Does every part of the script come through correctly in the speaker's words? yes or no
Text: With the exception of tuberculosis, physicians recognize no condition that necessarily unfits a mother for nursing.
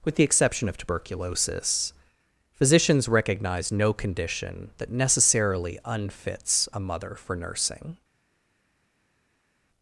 yes